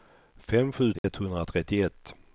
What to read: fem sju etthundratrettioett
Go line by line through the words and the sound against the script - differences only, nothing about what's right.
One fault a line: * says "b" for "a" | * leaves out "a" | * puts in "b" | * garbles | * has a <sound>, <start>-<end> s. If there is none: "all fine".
* has a dropout, 1.0-1.0 s